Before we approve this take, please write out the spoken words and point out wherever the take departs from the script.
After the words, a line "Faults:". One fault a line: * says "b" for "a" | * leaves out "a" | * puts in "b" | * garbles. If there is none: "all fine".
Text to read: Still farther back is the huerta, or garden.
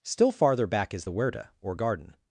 Still farther back is the huerta, or garden.
Faults:
all fine